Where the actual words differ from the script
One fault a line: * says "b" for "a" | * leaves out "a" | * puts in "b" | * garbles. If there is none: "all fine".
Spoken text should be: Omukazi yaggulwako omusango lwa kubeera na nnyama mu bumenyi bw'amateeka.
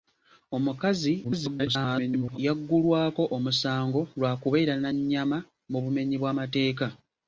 * garbles